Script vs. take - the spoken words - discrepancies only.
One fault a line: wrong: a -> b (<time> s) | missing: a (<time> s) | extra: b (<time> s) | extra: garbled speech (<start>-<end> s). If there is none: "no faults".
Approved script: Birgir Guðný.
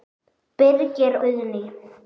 no faults